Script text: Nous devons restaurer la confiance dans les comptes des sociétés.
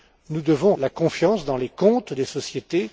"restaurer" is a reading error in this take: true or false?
true